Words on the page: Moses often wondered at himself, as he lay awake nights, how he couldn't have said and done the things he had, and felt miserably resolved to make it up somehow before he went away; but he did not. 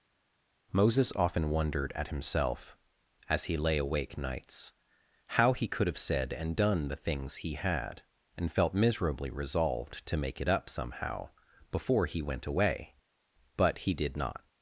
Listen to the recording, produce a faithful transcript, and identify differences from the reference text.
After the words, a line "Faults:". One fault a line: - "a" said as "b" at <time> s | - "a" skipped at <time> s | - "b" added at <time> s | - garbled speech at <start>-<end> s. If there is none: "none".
Moses often wondered at himself, as he lay awake nights, how he could have said and done the things he had, and felt miserably resolved to make it up somehow before he went away; but he did not.
Faults:
- "couldn't" said as "could" at 5.7 s